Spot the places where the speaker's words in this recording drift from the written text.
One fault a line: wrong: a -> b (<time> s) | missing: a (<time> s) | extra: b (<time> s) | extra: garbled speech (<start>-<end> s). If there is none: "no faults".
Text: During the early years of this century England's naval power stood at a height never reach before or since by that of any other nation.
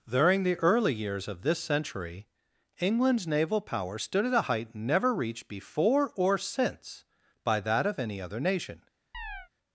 wrong: reach -> reached (5.1 s)